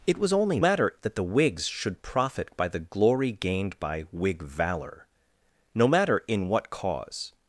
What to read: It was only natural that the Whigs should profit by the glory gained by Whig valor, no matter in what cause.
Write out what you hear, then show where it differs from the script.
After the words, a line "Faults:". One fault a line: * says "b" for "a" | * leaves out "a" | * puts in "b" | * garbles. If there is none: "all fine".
It was only matter that the Whigs should profit by the glory gained by Whig valor, no matter in what cause.
Faults:
* says "matter" for "natural"